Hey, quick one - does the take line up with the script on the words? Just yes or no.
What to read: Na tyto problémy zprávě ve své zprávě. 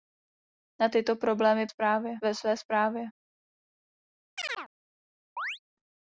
yes